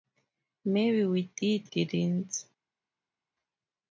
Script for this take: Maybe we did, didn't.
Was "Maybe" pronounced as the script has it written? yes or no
yes